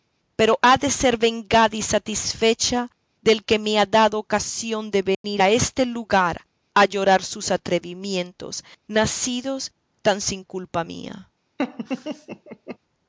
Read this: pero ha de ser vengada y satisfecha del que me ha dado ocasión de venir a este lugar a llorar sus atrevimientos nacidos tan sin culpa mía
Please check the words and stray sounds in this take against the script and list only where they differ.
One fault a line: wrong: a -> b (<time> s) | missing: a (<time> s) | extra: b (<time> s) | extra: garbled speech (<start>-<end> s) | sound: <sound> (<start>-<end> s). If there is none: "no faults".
sound: dropout (5.1-5.2 s)
sound: laugh (11.6-12.8 s)